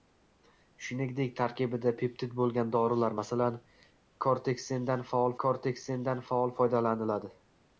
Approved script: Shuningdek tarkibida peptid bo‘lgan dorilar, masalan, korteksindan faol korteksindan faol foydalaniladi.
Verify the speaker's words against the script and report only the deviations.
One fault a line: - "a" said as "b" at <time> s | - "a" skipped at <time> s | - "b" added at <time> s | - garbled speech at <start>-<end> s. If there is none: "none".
none